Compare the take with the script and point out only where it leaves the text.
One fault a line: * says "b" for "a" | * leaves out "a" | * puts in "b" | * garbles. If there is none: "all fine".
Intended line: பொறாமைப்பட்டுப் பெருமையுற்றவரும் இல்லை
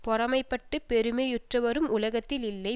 * puts in "உலகத்தில்"